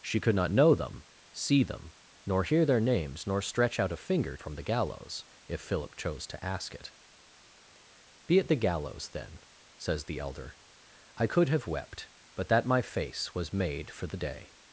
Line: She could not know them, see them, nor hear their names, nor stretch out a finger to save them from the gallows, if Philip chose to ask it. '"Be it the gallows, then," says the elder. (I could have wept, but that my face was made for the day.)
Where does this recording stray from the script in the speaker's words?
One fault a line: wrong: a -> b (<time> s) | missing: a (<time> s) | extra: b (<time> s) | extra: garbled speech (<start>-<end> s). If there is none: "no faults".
missing: to save them (4.3 s)